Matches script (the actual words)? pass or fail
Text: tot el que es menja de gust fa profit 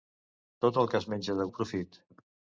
fail